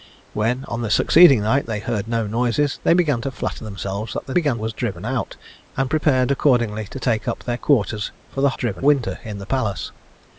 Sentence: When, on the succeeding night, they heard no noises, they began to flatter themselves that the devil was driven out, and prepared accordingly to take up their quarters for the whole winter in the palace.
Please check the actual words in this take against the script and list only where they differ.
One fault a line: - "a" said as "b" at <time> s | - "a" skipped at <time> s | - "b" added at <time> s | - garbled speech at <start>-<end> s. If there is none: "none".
- "devil" said as "began" at 4.3 s
- "whole" said as "driven" at 8.5 s